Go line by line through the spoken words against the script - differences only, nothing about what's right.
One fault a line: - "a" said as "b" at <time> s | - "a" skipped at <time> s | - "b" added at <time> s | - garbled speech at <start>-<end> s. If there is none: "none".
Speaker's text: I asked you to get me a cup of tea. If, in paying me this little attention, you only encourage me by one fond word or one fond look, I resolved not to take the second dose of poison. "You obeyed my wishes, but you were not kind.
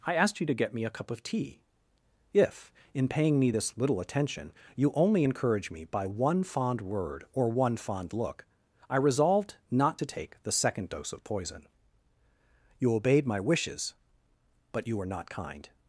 none